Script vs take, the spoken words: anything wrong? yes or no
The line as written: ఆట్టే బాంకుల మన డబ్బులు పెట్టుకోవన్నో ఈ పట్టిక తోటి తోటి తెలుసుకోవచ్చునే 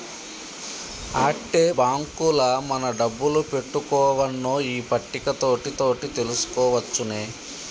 no